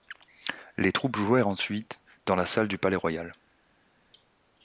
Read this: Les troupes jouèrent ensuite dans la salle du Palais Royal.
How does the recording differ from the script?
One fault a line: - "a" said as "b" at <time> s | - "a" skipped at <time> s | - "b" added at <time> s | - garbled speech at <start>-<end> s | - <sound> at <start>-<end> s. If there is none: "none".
none